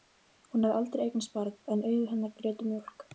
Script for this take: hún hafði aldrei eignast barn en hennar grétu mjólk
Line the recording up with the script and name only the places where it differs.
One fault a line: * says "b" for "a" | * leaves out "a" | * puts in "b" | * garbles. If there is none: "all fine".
* puts in "augu"